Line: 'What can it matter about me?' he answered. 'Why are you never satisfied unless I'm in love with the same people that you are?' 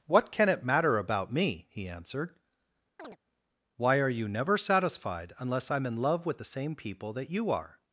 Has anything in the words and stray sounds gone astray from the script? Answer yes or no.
yes